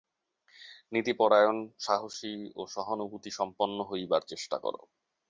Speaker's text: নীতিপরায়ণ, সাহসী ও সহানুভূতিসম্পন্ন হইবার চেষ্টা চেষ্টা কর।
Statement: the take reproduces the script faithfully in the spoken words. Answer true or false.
false